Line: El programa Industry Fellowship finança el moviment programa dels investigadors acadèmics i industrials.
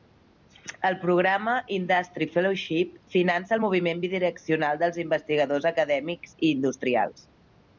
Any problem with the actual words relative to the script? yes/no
yes